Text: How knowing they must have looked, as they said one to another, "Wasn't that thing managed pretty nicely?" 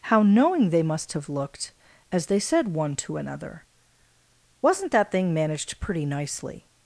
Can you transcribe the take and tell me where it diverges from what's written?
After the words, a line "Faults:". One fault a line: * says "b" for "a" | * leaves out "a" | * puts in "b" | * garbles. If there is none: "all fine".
How knowing they must have looked, as they said one to another, "Wasn't that thing managed pretty nicely?"
Faults:
all fine